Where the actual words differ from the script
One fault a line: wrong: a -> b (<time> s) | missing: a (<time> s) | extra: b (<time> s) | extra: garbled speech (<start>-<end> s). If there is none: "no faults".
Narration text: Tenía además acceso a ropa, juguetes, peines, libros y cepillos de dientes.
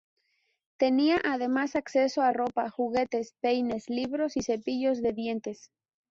no faults